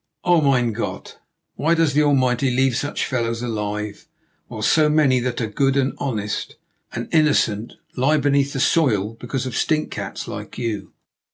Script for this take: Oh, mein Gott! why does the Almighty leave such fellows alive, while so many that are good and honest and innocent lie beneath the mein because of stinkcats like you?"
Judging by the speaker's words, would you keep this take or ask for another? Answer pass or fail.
fail